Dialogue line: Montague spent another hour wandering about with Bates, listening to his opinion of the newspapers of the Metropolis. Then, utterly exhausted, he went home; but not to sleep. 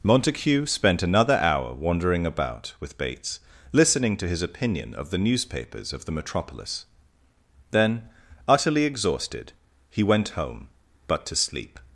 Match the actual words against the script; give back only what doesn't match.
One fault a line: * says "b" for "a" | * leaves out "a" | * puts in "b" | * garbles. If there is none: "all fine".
* leaves out "not"